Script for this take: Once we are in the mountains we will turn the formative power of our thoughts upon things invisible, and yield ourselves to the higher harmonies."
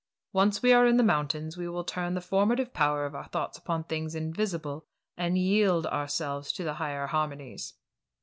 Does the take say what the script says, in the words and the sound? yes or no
yes